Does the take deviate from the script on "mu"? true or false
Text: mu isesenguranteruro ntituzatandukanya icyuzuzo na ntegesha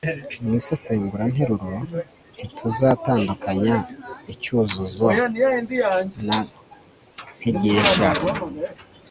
false